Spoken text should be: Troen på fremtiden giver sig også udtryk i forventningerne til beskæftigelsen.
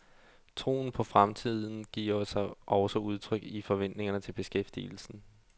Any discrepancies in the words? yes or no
no